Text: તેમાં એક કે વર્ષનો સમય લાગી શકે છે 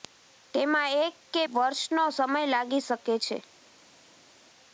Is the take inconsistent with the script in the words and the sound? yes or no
no